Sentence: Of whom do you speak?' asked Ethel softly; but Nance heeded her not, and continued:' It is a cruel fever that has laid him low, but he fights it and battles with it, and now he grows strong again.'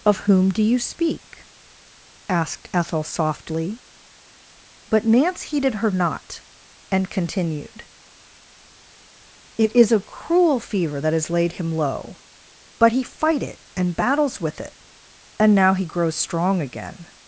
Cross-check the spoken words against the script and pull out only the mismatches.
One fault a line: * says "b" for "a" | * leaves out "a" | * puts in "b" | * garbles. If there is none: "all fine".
* says "fight" for "fights"